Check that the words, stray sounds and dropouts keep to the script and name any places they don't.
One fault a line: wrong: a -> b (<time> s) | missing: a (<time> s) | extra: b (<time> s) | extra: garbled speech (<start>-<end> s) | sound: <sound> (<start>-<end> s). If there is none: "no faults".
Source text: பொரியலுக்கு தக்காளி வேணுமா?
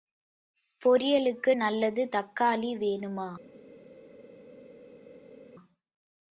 extra: நல்லது (1.5 s)